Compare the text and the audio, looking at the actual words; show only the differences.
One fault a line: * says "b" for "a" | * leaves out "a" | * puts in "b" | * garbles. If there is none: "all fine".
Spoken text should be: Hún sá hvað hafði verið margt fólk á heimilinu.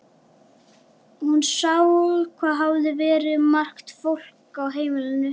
all fine